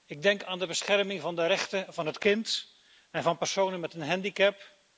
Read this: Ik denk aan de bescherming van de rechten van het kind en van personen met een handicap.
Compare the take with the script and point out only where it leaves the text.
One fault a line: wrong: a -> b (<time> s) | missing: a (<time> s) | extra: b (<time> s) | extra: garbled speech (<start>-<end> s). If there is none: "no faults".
no faults